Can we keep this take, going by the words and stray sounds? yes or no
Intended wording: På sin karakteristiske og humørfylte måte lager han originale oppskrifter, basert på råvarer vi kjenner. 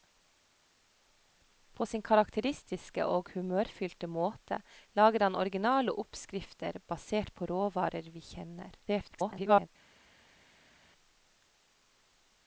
no